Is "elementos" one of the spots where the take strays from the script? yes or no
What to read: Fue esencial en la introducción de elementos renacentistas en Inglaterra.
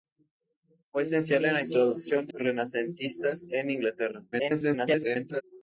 yes